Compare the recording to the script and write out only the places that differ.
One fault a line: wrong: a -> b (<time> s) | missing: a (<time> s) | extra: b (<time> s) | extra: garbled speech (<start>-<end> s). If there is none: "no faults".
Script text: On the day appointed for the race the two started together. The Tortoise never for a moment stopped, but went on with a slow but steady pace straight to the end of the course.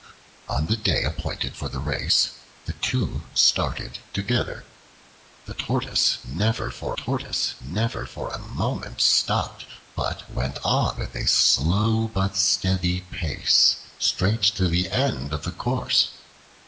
extra: Tortoise never for (6.9 s)